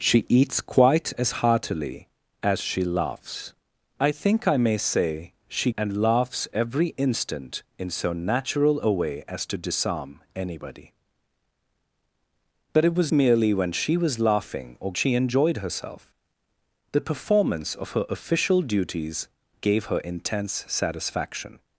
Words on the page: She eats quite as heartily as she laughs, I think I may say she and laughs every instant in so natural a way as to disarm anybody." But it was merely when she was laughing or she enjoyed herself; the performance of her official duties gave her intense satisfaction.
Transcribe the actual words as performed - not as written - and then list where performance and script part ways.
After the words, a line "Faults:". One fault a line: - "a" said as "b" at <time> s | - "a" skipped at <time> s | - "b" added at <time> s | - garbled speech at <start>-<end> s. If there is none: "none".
She eats quite as heartily as she laughs, I think I may say she and laughs every instant in so natural a way as to disarm anybody." But it was merely when she was laughing or she enjoyed herself; the performance of her official duties gave her intense satisfaction.
Faults:
none